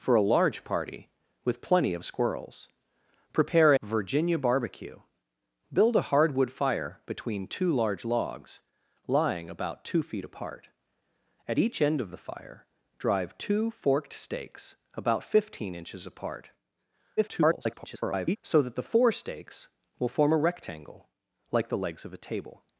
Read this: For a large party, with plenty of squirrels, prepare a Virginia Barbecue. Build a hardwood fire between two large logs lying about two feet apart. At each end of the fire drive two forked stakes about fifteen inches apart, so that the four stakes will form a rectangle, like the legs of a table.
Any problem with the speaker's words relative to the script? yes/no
yes